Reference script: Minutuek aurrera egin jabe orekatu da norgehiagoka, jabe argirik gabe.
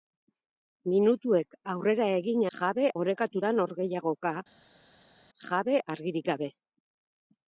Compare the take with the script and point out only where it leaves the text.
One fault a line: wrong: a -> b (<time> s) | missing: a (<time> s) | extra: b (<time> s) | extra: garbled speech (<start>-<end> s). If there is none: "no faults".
no faults